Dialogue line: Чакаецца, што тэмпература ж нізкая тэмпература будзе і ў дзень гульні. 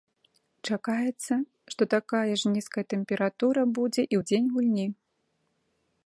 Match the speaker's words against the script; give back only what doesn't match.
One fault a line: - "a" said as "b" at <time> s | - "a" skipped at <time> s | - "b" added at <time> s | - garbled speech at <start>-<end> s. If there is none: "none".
- "тэмпература" said as "такая" at 1.9 s